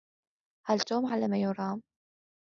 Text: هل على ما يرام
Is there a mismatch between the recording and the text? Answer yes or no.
yes